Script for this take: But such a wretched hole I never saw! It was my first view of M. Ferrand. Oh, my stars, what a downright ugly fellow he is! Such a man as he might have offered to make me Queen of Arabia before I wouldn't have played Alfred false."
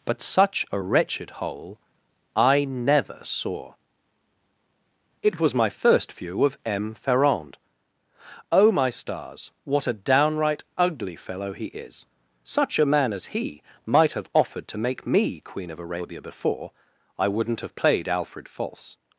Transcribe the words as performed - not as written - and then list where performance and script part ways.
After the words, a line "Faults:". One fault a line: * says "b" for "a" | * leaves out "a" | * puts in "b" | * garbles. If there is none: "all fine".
But such a wretched hole I never saw! It was my first view of M. Ferrand. Oh, my stars, what a downright ugly fellow he is! Such a man as he might have offered to make me Queen of Arabia before I wouldn't have played Alfred false."
Faults:
all fine